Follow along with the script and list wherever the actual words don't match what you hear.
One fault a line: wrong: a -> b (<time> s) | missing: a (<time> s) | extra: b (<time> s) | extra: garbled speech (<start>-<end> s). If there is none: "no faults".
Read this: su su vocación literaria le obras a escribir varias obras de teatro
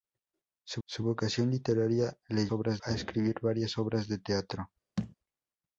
no faults